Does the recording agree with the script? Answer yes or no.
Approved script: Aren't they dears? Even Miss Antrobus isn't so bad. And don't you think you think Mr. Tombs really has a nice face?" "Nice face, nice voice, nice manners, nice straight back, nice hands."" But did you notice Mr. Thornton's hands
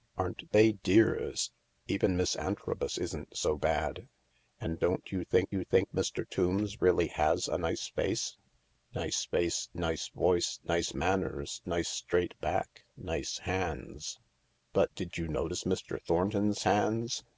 yes